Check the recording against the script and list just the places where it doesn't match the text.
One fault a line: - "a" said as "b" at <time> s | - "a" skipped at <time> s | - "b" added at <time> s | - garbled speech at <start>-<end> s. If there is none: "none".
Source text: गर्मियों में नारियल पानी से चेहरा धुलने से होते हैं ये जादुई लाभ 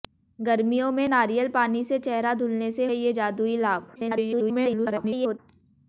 - "होते" skipped at 2.8 s
- garbled speech at 3.9-5.4 s